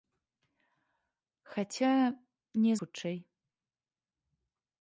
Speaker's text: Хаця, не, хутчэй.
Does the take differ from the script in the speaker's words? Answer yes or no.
no